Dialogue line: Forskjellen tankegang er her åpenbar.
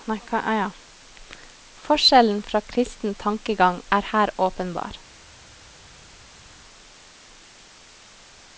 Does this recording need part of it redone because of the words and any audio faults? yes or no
yes